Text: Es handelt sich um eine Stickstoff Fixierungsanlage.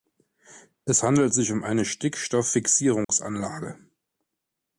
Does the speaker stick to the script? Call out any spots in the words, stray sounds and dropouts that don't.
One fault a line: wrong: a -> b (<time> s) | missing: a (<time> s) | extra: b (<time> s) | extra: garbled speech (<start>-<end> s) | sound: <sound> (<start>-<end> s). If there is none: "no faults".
sound: dropout (3.0-3.1 s)